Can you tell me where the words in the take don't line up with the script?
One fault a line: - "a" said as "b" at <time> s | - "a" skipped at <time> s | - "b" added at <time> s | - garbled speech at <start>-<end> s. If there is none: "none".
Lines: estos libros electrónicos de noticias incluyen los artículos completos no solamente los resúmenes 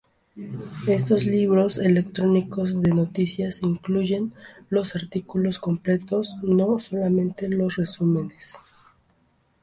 none